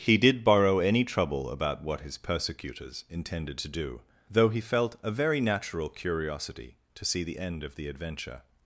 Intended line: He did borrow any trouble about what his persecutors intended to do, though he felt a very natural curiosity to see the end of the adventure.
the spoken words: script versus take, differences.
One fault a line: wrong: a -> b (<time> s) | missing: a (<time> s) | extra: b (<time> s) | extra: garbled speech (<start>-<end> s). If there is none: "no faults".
no faults